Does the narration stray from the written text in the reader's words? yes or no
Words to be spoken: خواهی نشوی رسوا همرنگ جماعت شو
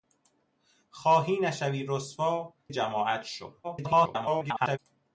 yes